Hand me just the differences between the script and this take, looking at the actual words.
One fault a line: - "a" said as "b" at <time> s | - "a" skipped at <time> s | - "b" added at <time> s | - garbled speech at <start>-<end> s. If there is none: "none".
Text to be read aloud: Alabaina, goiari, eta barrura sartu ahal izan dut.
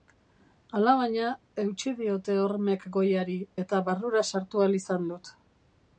- "eutsi diote hormek" added at 1.6 s